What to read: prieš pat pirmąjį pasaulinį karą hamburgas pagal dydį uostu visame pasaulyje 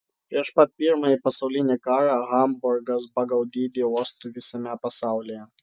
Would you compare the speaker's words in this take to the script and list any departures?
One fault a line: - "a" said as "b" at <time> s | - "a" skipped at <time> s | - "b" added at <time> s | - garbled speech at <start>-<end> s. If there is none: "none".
none